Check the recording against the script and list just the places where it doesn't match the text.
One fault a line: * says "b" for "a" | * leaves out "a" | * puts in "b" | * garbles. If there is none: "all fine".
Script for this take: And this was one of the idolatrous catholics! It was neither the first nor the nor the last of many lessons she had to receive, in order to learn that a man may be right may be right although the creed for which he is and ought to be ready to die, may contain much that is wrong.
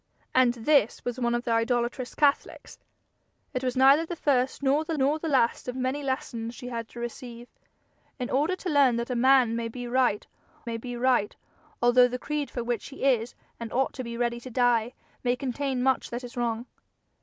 all fine